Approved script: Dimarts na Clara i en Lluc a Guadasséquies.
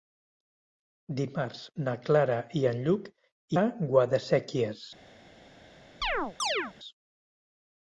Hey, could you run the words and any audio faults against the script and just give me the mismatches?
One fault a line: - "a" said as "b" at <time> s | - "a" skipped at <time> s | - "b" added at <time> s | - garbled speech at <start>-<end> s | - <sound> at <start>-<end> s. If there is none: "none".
- chirp at 6.0-6.7 s